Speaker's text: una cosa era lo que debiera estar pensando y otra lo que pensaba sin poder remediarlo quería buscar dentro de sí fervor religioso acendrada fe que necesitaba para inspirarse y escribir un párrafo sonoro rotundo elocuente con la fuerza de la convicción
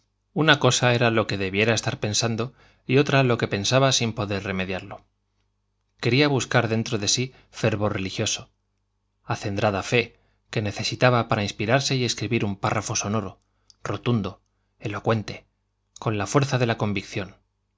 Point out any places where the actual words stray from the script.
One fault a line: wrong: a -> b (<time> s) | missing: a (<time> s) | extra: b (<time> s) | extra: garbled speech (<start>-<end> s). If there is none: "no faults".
no faults